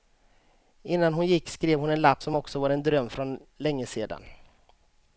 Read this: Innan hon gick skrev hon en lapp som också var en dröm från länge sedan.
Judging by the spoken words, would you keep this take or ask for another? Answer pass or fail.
pass